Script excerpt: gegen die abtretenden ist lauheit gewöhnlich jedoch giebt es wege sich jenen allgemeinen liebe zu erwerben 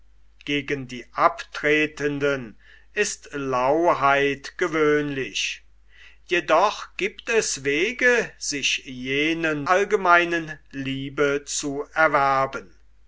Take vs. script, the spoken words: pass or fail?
pass